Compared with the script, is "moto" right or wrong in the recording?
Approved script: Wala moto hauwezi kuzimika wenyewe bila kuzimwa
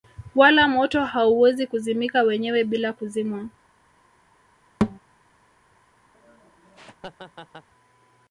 right